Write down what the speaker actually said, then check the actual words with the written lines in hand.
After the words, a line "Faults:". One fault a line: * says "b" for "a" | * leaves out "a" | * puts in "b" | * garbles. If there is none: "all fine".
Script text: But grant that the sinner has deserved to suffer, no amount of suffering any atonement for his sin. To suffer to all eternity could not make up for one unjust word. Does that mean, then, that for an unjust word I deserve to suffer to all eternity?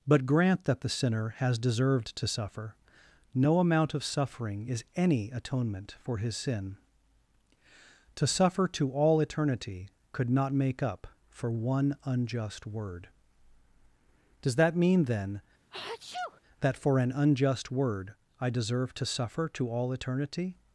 But grant that the sinner has deserved to suffer, no amount of suffering is any atonement for his sin. To suffer to all eternity could not make up for one unjust word. Does that mean, then, that for an unjust word I deserve to suffer to all eternity?
Faults:
* puts in "is"